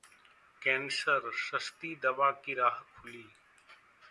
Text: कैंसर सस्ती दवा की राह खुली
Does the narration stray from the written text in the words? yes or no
no